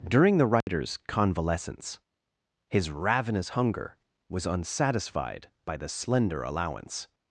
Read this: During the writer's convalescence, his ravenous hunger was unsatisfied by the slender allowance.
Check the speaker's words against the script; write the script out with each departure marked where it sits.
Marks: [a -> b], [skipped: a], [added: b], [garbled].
During the writer's convalescence, his ravenous hunger was unsatisfied by the slender allowance.